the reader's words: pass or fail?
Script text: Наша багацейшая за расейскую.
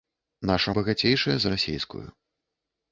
pass